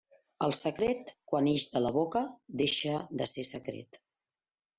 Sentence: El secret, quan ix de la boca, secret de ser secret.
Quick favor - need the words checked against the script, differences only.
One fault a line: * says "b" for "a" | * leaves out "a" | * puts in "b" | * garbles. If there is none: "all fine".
* says "deixa" for "secret"